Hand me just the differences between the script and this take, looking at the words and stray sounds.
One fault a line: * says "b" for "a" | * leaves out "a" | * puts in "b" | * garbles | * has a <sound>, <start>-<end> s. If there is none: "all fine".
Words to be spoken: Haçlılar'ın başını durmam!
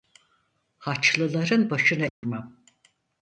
* has a dropout, 2.1-2.2 s